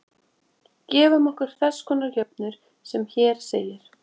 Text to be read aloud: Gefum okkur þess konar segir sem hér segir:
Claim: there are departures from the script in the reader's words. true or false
true